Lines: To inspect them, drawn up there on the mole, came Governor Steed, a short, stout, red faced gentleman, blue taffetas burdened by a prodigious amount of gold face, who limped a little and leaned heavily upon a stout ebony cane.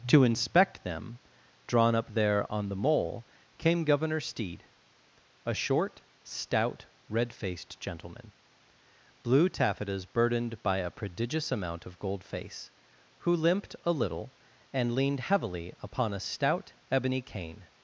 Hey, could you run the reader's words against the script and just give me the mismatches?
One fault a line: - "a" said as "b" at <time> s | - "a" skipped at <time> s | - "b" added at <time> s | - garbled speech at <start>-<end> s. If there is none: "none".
none